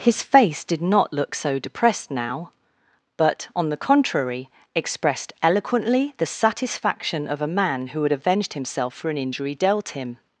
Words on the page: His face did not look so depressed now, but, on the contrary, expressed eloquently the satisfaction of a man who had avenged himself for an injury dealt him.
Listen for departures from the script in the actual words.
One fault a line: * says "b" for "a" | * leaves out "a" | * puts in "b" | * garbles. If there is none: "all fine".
all fine